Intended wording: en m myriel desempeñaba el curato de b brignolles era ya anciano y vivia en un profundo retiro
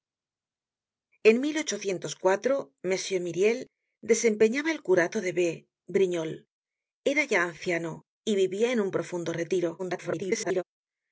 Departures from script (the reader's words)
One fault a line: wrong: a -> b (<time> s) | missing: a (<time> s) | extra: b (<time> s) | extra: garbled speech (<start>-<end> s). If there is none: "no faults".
extra: garbled speech (9.8-10.6 s)